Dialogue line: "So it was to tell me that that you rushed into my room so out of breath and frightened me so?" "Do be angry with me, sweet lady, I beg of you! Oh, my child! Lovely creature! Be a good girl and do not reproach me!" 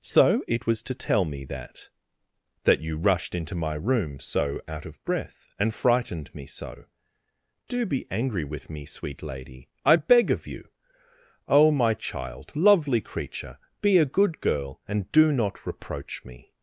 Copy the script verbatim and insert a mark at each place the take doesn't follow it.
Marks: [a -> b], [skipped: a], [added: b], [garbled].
"So it was to tell me that that you rushed into my room so out of breath and frightened me so?" "Do be angry with me, sweet lady, I beg of you! Oh, my child! Lovely creature! Be a good girl and do not reproach me!"